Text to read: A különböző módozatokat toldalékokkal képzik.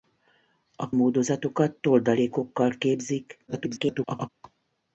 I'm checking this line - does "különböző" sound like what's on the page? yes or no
no